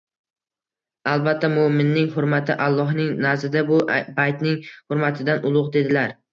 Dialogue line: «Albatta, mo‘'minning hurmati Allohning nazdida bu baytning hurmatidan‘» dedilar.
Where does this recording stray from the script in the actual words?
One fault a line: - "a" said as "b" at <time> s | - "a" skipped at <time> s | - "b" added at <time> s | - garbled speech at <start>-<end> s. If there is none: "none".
- "ulug" added at 5.5 s